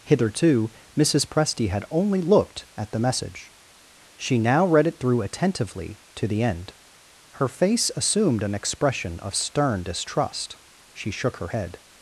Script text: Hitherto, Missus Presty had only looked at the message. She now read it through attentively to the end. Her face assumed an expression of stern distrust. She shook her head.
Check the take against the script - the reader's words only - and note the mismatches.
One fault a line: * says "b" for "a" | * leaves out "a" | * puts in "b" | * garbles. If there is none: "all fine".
all fine